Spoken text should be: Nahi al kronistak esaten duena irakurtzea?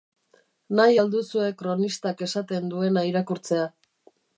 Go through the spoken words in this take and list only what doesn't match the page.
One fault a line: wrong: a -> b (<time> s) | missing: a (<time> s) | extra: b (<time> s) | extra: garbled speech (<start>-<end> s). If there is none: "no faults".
extra: duzue (1.2 s)